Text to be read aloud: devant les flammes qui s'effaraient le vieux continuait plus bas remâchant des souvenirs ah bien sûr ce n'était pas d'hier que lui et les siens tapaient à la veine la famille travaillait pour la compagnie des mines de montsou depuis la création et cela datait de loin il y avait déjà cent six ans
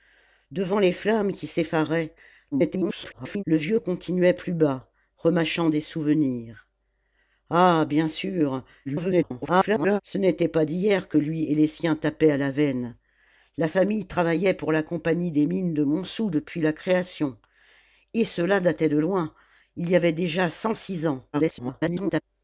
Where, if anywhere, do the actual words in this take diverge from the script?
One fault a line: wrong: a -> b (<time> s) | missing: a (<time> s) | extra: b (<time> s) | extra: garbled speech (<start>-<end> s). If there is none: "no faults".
extra: garbled speech (2.5-3.4 s)
extra: garbled speech (8.9-10.0 s)
extra: garbled speech (21.3-22.2 s)